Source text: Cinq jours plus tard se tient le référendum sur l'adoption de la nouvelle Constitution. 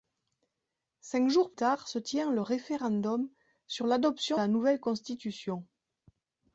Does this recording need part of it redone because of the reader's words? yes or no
yes